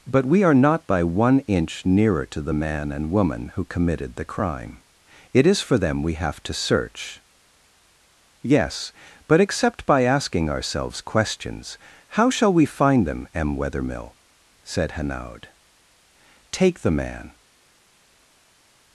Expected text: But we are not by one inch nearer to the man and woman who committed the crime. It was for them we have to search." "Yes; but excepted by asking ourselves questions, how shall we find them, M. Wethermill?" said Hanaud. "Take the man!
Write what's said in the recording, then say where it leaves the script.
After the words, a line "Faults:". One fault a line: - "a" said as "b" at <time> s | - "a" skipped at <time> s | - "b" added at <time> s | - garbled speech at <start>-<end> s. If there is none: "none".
But we are not by one inch nearer to the man and woman who committed the crime. It is for them we have to search." "Yes; but except by asking ourselves questions, how shall we find them, M. Wethermill?" said Hanaud. "Take the man!
Faults:
- "was" said as "is" at 5.5 s
- "excepted" said as "except" at 9.4 s